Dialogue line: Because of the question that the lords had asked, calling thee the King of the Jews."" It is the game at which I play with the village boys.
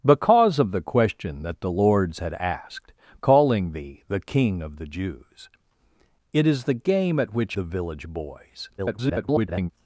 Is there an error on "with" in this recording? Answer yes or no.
yes